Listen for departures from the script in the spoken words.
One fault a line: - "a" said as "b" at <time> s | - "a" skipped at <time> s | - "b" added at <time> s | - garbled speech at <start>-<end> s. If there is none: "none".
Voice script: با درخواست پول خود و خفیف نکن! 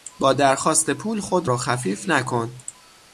none